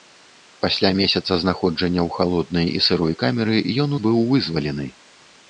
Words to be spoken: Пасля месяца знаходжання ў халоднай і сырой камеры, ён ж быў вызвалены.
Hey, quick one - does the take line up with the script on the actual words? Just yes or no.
yes